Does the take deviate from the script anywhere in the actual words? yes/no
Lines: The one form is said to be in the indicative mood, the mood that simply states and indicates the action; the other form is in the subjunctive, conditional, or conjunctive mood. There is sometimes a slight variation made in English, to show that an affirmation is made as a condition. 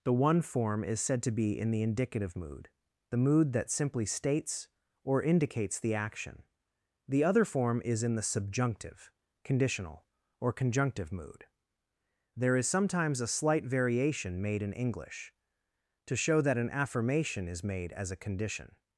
yes